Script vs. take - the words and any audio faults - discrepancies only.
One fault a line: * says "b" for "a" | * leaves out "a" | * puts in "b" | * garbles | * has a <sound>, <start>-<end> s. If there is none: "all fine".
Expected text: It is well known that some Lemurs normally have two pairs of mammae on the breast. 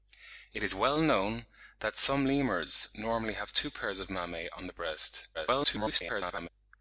* garbles